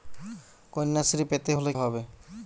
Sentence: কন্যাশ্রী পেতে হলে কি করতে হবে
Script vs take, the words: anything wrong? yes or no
yes